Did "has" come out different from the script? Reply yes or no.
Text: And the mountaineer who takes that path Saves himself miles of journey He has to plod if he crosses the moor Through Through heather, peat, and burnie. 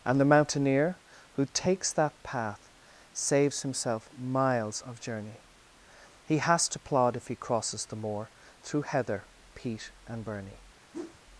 no